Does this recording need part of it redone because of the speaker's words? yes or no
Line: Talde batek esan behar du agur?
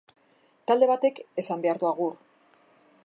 no